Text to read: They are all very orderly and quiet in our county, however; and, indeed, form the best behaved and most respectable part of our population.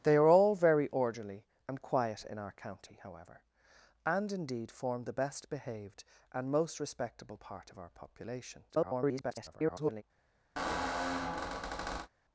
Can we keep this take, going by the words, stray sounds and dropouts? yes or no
no